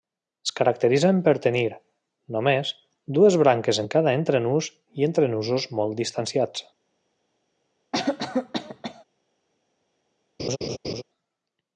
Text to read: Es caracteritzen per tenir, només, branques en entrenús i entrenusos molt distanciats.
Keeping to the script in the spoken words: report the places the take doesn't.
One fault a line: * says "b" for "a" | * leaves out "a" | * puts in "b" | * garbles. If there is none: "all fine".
* puts in "dues"
* puts in "cada"